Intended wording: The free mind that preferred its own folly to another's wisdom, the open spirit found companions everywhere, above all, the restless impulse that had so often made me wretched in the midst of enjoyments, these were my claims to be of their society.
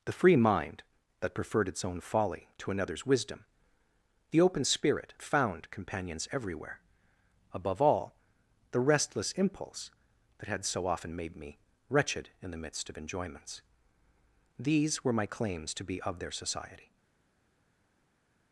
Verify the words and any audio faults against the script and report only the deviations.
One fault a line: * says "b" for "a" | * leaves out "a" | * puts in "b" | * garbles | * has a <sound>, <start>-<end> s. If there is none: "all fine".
all fine